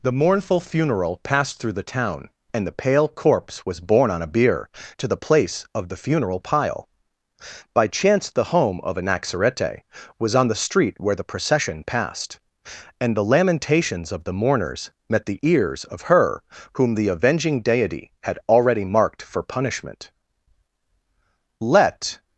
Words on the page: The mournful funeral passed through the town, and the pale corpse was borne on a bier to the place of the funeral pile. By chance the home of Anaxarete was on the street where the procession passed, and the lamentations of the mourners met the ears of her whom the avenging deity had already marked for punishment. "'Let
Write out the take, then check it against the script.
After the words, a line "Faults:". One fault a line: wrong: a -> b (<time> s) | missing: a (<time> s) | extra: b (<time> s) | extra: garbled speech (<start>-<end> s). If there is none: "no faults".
The mournful funeral passed through the town, and the pale corpse was borne on a bier to the place of the funeral pile. By chance the home of Anaxarete was on the street where the procession passed, and the lamentations of the mourners met the ears of her whom the avenging deity had already marked for punishment. "'Let
Faults:
no faults